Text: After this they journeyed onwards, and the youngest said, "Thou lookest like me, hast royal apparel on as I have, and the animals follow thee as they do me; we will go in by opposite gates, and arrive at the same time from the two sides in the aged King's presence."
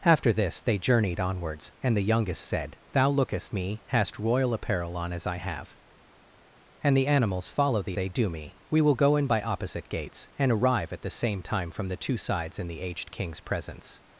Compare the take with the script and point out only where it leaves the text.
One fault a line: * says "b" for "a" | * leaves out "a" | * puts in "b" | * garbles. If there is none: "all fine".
* leaves out "like"
* leaves out "as"